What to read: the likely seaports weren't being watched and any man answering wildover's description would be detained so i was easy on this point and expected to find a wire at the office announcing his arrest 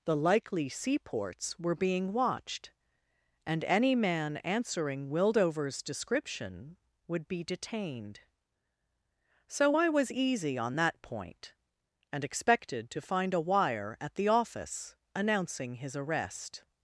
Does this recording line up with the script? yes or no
no